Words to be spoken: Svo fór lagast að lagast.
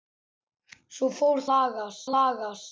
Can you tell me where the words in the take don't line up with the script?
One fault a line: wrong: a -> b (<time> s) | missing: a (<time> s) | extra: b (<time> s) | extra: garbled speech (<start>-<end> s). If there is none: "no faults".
no faults